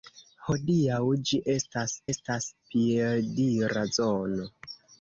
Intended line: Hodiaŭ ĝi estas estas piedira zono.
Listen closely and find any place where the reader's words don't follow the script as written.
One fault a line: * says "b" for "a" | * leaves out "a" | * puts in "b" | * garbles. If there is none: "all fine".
all fine